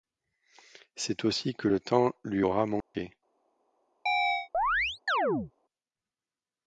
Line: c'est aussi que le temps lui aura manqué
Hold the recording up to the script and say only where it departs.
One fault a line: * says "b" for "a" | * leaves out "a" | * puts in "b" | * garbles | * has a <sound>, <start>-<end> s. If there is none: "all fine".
* has a dropout, 2.8-2.9 s
* has a chirp, 4.1-5.5 s